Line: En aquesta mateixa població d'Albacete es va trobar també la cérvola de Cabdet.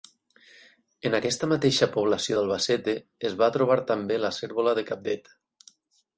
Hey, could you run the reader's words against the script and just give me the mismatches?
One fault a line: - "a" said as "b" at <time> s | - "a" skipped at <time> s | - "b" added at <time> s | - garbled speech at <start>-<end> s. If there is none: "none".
none